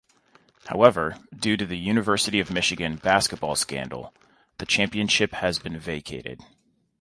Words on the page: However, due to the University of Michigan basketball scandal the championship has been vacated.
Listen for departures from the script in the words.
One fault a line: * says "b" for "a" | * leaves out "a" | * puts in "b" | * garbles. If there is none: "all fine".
all fine